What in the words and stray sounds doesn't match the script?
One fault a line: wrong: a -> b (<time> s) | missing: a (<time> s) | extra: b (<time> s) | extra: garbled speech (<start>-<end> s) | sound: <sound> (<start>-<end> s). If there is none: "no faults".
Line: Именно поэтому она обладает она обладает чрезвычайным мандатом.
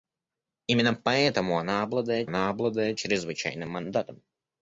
no faults